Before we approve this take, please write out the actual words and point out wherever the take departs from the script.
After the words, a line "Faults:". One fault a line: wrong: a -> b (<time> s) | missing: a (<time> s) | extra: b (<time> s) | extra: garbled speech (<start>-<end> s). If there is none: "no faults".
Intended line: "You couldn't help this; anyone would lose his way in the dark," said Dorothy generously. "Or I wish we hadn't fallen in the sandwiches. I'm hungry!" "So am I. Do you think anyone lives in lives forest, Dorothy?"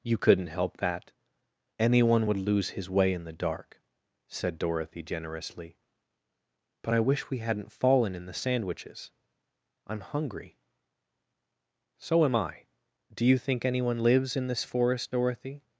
"You couldn't help that; anyone would lose his way in the dark," said Dorothy generously. "But I wish we hadn't fallen in the sandwiches. I'm hungry!" "So am I. Do you think anyone lives in this forest, Dorothy?"
Faults:
wrong: this -> that (0.8 s)
wrong: Or -> But (6.8 s)
wrong: lives -> this (14.5 s)